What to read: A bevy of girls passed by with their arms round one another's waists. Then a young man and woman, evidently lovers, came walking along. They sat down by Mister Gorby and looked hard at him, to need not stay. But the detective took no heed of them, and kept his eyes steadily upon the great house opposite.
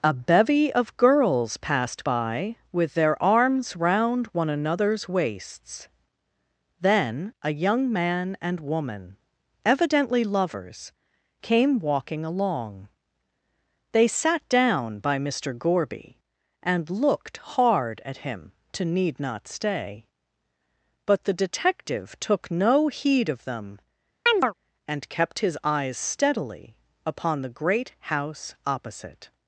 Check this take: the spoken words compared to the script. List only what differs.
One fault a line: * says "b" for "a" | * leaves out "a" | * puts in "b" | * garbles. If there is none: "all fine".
all fine